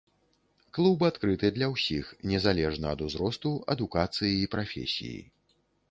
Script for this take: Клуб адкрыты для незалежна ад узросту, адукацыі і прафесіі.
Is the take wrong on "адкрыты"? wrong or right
right